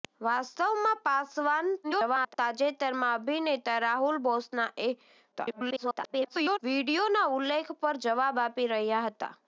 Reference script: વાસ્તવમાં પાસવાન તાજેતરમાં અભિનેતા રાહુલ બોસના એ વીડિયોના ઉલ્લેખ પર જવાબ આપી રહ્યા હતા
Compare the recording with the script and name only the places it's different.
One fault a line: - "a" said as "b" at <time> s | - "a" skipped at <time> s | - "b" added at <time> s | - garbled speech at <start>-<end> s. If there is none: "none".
- garbled speech at 1.8-2.3 s
- garbled speech at 5.3-6.6 s